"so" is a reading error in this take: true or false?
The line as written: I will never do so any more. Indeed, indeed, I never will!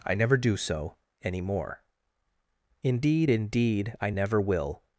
false